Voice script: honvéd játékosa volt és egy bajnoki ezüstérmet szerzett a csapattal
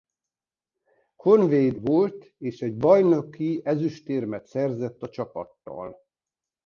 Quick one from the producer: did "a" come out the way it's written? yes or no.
yes